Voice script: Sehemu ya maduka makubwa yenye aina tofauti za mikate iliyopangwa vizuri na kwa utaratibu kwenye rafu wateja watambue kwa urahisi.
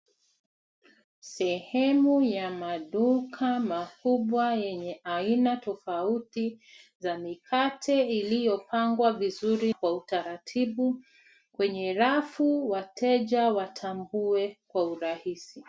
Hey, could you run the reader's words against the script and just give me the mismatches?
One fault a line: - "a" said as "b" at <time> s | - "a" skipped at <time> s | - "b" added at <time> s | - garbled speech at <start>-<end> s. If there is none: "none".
- "na" skipped at 9.7 s